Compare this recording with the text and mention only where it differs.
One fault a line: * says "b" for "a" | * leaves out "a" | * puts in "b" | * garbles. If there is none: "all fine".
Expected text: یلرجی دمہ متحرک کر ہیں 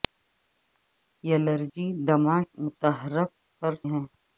all fine